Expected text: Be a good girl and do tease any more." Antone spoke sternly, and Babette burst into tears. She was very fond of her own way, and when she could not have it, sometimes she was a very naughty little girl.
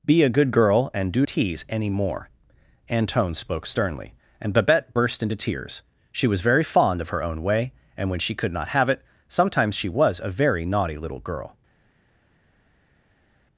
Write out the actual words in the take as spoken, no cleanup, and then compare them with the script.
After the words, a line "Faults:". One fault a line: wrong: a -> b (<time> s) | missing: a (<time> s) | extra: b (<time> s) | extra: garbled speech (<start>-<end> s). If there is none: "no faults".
Be a good girl and do tease any more." Antone spoke sternly, and Babette burst into tears. She was very fond of her own way, and when she could not have it, sometimes she was a very naughty little girl.
Faults:
no faults